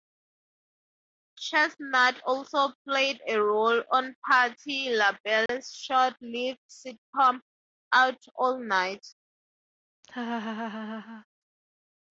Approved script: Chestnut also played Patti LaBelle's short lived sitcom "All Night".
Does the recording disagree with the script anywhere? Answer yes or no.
yes